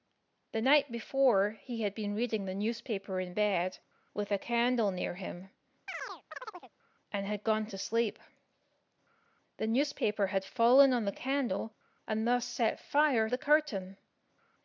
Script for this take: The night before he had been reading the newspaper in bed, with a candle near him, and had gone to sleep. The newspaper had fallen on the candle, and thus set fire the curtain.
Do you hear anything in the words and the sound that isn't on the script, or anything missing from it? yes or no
yes